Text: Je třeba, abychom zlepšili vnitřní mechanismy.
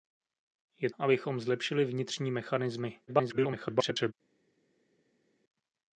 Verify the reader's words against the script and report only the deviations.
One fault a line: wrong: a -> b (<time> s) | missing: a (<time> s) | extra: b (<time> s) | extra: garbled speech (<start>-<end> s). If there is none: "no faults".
missing: třeba (0.9 s)
extra: garbled speech (3.1-4.1 s)